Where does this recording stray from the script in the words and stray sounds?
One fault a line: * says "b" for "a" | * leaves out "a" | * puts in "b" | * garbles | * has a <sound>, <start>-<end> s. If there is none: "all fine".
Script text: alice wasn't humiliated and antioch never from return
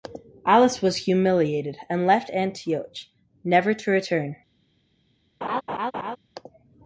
* says "was" for "wasn't"
* puts in "left"
* says "to" for "from"
* has a laugh, 5.4-6.2 s